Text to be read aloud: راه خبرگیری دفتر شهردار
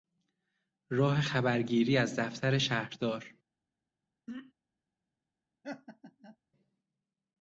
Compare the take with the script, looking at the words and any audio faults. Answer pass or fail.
fail